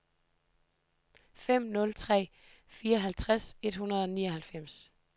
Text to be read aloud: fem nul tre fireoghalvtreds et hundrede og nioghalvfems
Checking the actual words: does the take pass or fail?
pass